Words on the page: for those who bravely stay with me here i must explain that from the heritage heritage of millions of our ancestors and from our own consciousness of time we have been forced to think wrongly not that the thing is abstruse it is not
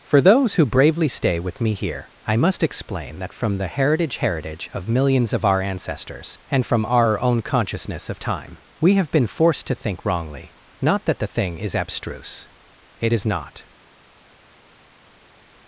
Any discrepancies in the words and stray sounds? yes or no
no